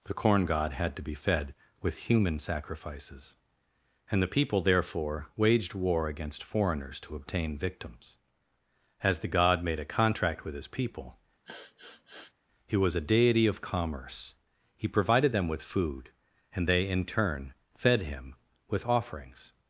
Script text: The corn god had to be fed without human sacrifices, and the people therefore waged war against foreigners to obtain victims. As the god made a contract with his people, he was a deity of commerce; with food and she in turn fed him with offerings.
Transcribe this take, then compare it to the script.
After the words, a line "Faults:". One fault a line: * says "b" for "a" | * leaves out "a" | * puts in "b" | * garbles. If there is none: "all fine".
The corn god had to be fed with human sacrifices, and the people therefore waged war against foreigners to obtain victims. As the god made a contract with his people, he was a deity of commerce; he provided them with food and they in turn fed him with offerings.
Faults:
* says "with" for "without"
* puts in "he provided them"
* says "they" for "she"